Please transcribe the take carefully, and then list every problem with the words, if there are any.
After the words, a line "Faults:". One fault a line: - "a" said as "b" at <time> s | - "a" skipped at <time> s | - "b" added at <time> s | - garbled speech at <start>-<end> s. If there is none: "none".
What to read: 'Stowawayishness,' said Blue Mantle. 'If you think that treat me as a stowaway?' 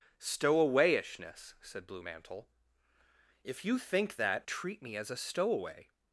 'Stowawayishness,' said Blue Mantle. 'If you think that treat me as a stowaway?'
Faults:
none